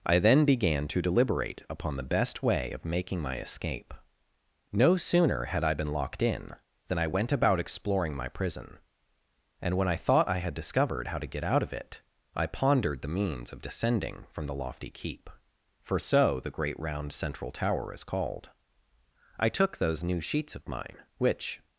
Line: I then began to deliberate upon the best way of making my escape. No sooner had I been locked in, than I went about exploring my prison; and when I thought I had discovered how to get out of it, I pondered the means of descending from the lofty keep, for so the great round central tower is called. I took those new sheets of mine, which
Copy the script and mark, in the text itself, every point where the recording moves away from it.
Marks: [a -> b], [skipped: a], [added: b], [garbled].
I then began to deliberate upon the best way of making my escape. No sooner had I been locked in, than I went about exploring my prison; and when I thought I had discovered how to get out of it, I pondered the means of descending from the lofty keep, for so the great round central tower is called. I took those new sheets of mine, which